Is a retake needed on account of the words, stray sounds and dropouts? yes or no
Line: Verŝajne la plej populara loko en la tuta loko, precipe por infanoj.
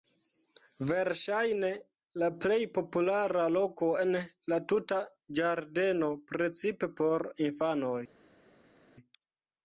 yes